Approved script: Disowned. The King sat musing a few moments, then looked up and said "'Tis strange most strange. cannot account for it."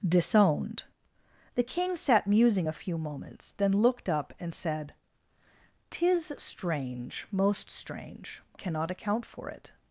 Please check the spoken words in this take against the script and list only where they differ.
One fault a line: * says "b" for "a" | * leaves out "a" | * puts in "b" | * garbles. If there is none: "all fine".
all fine